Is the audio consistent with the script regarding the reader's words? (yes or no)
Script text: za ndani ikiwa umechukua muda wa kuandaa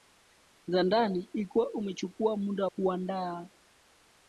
no